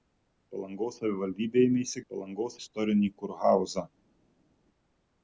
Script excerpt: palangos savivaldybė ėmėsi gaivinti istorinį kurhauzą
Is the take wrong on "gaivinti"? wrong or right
wrong